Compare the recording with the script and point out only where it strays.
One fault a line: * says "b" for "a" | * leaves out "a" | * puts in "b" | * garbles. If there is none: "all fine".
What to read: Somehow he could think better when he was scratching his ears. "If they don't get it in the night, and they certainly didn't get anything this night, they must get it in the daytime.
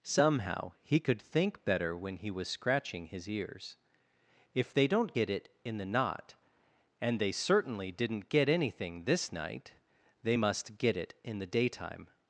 * says "knot" for "night"